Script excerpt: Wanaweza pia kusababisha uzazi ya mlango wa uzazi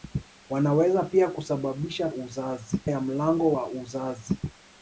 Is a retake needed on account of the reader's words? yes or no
no